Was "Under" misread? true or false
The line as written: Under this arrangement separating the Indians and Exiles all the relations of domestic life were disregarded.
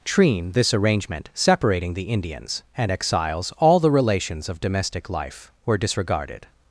true